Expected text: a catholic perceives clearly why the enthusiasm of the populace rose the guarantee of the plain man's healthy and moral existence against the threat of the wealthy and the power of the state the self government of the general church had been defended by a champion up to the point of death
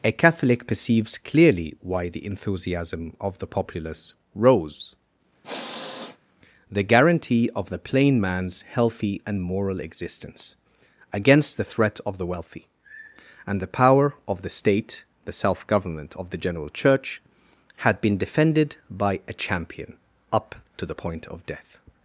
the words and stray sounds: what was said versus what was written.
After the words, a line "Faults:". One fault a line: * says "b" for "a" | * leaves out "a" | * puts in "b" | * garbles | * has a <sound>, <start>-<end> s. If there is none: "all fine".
a catholic perceives clearly why the enthusiasm of the populace rose the guarantee of the plain man's healthy and moral existence against the threat of the wealthy and the power of the state the self government of the general church had been defended by a champion up to the point of death
Faults:
* has a sniff, 5.4-6.2 s